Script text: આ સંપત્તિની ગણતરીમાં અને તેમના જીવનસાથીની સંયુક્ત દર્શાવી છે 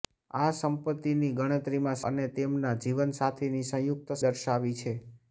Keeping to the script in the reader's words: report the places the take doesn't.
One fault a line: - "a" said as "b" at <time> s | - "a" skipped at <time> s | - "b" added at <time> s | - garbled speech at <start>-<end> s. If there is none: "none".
none